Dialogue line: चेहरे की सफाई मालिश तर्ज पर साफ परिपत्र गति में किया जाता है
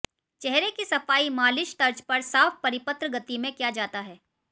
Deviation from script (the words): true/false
false